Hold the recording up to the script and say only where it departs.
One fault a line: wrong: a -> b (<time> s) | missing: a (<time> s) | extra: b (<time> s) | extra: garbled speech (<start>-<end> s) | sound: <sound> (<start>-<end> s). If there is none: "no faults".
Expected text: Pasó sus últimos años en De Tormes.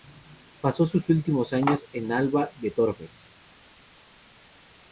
extra: Alba (2.1 s)